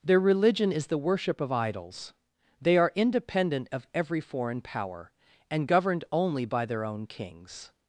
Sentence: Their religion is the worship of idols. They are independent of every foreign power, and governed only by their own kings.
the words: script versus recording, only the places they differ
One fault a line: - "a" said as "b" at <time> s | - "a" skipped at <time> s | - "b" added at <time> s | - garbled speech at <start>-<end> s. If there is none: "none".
none